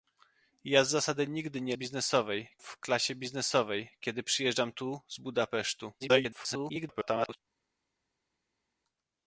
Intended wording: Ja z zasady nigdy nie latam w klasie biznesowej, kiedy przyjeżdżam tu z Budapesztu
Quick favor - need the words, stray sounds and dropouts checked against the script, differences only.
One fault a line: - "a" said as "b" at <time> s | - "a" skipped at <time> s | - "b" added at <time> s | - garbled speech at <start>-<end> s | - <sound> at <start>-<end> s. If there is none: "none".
- "latam" said as "biznesowej" at 1.7 s
- garbled speech at 6.0-7.4 s